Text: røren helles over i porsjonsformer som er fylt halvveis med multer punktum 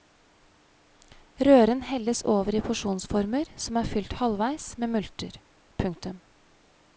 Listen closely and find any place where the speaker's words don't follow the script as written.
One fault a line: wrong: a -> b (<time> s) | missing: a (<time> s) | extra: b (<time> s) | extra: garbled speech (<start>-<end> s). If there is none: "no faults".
no faults